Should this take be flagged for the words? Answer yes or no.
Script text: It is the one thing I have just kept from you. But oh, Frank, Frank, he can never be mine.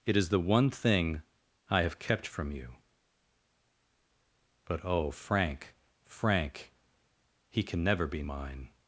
yes